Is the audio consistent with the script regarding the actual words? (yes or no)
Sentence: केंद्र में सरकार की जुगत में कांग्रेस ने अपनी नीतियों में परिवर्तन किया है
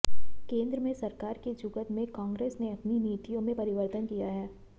yes